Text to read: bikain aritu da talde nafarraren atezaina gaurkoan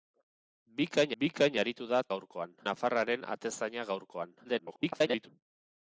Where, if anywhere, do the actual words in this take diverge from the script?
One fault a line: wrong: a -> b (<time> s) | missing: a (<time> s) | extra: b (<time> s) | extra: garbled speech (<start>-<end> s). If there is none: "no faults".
extra: bikain (1.2 s)
wrong: talde -> gaurkoan (2.1 s)
extra: garbled speech (4.4-5.3 s)